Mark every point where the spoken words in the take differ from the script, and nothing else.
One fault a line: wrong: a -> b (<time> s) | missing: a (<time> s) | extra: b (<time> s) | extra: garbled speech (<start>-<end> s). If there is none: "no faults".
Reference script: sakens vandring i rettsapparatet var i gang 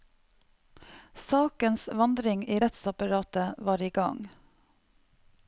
no faults